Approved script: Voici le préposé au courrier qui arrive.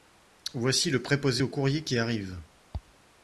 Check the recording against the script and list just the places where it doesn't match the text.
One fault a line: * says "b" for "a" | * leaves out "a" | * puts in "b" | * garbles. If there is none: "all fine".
all fine